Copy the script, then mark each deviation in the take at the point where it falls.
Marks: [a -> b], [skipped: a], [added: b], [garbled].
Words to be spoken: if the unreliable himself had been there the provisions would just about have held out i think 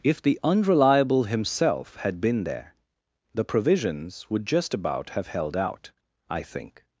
if the unreliable himself had been there the provisions would just about have held out i think